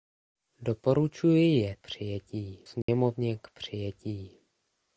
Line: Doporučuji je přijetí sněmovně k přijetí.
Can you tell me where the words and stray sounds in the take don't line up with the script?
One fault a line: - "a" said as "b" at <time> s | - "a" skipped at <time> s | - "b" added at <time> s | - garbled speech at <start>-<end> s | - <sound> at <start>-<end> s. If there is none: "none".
- dropout at 2.8-2.9 s